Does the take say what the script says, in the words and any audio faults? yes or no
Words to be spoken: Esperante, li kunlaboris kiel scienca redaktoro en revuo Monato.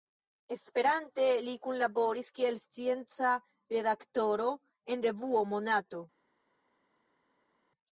yes